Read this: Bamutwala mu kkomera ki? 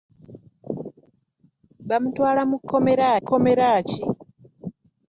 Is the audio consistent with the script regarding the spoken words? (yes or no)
no